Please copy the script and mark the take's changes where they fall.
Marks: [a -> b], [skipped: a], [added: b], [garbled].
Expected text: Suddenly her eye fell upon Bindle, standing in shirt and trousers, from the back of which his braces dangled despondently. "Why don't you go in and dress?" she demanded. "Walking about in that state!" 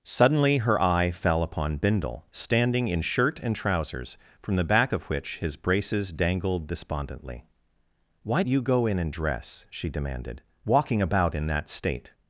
Suddenly her eye fell upon Bindle, standing in shirt and trousers, from the back of which his braces dangled despondently. "Why [skipped: don't] you go in and dress?" she demanded. "Walking about in that state!"